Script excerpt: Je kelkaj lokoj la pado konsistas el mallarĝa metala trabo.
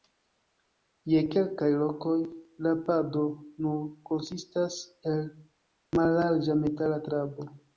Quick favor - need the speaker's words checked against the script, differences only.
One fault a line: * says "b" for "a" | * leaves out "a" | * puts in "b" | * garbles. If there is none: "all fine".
* puts in "nur"